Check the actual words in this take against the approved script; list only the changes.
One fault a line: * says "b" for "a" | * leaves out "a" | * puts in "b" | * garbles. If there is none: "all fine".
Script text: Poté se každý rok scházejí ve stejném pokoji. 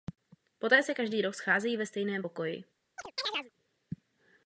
all fine